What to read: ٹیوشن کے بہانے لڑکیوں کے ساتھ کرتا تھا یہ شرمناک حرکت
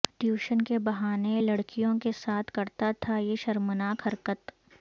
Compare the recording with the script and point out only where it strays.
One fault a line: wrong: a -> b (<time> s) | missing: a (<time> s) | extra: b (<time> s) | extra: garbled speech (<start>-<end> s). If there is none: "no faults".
no faults